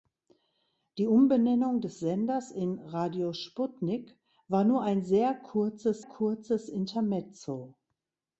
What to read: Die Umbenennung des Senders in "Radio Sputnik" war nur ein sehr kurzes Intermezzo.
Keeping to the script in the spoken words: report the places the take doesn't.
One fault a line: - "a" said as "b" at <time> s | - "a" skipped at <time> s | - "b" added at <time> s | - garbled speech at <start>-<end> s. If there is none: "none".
- "kurzes" added at 6.0 s